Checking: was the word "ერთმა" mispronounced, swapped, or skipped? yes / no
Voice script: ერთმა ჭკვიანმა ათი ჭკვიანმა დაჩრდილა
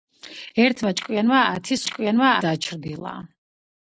no